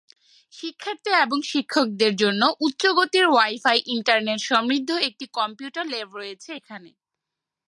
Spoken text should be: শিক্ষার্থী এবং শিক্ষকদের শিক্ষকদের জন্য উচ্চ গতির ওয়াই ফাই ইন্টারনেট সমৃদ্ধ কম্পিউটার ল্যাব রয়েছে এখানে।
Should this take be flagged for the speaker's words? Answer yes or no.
yes